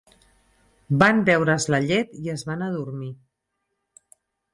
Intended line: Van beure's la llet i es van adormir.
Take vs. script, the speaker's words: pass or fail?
pass